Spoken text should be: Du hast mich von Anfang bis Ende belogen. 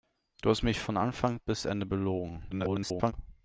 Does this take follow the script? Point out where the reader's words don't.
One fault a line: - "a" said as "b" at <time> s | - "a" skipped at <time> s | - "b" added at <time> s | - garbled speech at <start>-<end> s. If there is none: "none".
- garbled speech at 2.5-3.1 s